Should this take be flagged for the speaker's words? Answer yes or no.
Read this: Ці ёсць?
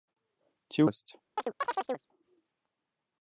no